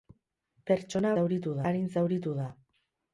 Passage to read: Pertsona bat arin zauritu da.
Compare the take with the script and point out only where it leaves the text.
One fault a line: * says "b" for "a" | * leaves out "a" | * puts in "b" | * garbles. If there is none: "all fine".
* says "zauritu" for "bat"